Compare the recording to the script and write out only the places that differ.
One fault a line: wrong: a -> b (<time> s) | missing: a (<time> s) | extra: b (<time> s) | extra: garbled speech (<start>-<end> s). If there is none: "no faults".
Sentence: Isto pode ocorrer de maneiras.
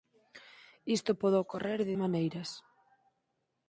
no faults